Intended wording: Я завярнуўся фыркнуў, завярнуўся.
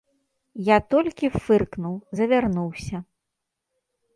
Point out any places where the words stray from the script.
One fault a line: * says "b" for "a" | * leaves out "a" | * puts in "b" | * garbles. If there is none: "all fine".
* says "толькі" for "завярнуўся"